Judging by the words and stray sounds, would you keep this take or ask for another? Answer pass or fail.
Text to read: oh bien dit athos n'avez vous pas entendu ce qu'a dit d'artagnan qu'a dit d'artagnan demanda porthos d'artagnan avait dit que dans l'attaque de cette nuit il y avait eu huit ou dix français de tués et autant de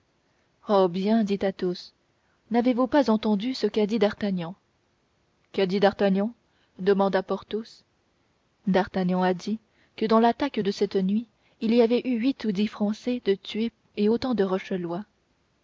fail